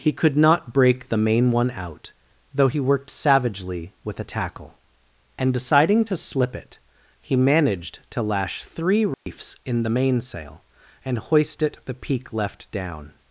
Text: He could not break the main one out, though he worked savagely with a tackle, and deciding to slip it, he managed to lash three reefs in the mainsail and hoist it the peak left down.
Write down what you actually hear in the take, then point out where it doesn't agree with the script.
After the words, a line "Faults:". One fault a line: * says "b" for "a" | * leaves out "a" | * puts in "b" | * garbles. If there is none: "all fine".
He could not break the main one out, though he worked savagely with a tackle, and deciding to slip it, he managed to lash three reefs in the mainsail and hoist it the peak left down.
Faults:
all fine